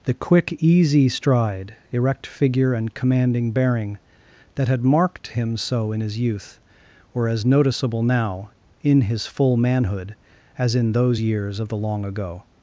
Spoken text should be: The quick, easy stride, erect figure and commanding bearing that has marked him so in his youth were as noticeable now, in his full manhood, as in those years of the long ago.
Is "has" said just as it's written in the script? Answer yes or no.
no